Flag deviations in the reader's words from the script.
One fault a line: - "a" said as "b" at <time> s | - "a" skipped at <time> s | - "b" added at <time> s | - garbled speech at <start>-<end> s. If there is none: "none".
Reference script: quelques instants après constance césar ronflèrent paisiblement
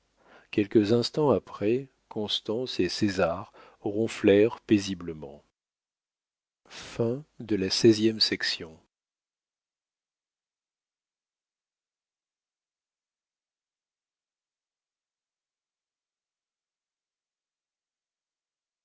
- "et" added at 2.8 s